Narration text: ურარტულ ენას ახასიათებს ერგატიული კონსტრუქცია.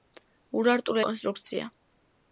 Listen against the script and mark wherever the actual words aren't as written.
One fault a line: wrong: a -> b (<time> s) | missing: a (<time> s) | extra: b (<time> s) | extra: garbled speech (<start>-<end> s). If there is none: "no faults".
missing: ენას ახასიათებს ერგატიული (1.0 s)